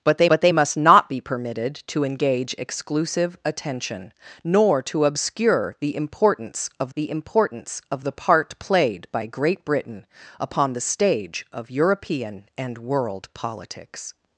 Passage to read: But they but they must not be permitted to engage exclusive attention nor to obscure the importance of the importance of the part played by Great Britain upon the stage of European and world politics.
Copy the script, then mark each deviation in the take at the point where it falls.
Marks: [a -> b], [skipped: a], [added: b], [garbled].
But they but they must not be permitted to engage exclusive attention nor to obscure the importance of the importance of the part played by Great Britain upon the stage of European and world politics.